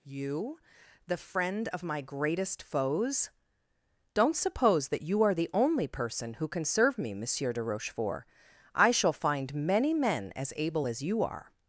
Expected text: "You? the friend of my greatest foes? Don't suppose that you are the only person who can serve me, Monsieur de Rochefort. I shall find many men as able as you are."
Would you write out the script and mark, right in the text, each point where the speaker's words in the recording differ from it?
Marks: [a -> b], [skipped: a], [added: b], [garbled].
"You? the friend of my greatest foes? Don't suppose that you are the only person who can serve me, Monsieur de Rochefort. I shall find many men as able as you are."